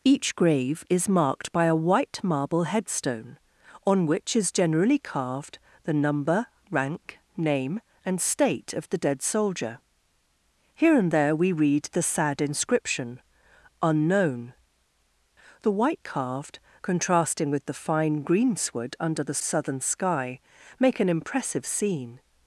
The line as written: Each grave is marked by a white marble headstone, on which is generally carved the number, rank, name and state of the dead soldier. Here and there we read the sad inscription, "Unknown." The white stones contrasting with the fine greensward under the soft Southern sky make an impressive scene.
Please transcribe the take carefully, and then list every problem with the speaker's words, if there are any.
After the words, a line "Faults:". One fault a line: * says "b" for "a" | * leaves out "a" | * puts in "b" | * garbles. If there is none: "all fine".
Each grave is marked by a white marble headstone, on which is generally carved the number, rank, name and state of the dead soldier. Here and there we read the sad inscription, "Unknown." The white carved contrasting with the fine greensward under the Southern sky make an impressive scene.
Faults:
* says "carved" for "stones"
* leaves out "soft"